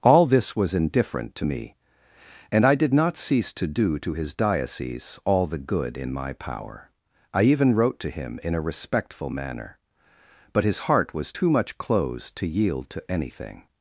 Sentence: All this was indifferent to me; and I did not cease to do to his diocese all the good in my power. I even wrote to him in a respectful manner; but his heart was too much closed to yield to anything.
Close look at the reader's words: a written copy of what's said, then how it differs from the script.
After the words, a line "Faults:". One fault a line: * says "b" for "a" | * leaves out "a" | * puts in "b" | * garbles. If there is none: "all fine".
All this was indifferent to me; and I did not cease to do to his diocese all the good in my power. I even wrote to him in a respectful manner; but his heart was too much closed to yield to anything.
Faults:
all fine